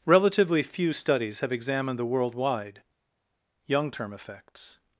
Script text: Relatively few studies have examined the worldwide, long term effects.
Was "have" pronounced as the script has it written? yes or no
yes